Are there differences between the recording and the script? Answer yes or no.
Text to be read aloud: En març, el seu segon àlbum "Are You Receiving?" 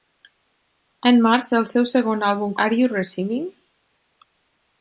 no